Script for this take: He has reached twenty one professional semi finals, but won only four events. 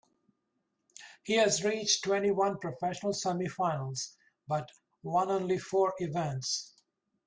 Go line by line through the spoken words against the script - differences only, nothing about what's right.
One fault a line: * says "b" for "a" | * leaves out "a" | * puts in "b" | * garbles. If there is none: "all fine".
all fine